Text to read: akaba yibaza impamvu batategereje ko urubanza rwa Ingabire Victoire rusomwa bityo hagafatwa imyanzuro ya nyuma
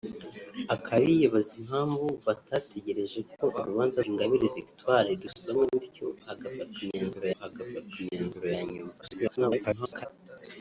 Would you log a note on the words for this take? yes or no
yes